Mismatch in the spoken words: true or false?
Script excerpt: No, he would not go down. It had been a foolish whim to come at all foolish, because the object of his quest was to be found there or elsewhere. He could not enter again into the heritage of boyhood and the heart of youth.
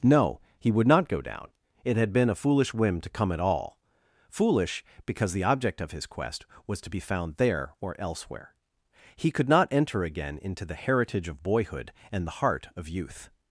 false